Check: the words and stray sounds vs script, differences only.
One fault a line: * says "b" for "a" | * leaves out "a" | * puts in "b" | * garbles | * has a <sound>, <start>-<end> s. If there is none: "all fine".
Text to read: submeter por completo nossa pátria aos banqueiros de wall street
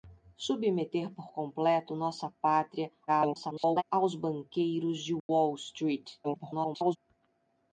* garbles
* has a dropout, 5.2-5.3 s
* garbles